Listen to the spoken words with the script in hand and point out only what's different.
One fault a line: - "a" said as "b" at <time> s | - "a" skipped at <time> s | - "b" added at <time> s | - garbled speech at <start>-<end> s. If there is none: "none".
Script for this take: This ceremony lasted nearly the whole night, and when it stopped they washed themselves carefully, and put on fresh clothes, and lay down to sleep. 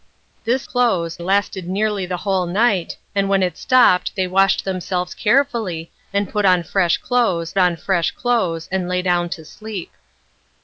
- "ceremony" said as "clothes" at 0.6 s
- "on fresh clothes" added at 7.6 s